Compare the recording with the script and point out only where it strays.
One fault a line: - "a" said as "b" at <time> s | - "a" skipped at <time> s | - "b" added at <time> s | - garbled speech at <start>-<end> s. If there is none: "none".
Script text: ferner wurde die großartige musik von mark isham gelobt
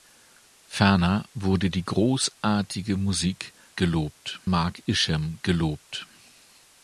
- "von" said as "gelobt" at 3.8 s